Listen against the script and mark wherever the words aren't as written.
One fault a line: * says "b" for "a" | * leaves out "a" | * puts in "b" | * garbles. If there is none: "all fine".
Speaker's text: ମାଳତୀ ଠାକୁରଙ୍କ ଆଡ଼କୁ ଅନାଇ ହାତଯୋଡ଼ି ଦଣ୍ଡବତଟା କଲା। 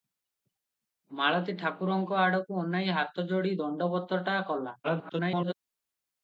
* garbles